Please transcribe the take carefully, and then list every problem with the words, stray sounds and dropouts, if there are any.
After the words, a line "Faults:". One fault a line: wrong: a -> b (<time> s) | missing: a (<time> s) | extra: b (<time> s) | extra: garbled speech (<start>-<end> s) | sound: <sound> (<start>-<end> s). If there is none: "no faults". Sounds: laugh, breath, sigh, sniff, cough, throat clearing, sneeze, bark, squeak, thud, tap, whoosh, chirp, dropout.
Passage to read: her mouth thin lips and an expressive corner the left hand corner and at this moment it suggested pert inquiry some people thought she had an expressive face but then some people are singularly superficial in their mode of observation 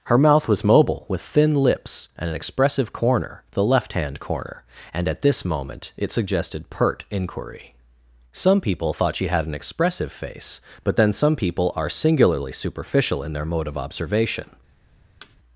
her mouth was mobile with thin lips and an expressive corner the left hand corner and at this moment it suggested pert inquiry some people thought she had an expressive face but then some people are singularly superficial in their mode of observation
Faults:
extra: was mobile with (0.5 s)
sound: thud (15.2-15.4 s)